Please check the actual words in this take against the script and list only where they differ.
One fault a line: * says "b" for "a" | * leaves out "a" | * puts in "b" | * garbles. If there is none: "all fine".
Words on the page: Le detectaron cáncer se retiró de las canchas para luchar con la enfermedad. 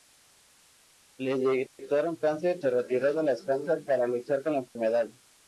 all fine